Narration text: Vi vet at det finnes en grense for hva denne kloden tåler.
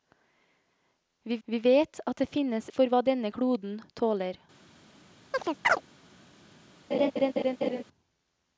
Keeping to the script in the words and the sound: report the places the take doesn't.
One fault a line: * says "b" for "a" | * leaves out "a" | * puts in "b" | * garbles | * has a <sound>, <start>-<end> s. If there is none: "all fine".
* puts in "vi"
* leaves out "en grense"
* has a chirp, 5.3-5.8 s
* has a laugh, 6.9-7.8 s